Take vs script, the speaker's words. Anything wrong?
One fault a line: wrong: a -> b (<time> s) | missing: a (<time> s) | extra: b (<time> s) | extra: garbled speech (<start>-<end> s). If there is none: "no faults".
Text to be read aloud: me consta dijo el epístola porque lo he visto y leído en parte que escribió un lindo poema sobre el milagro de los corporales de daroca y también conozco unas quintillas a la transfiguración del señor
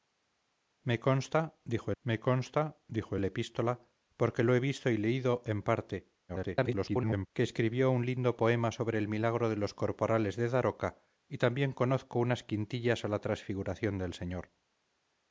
extra: me consta dijo (2.0 s)
extra: garbled speech (6.3-7.3 s)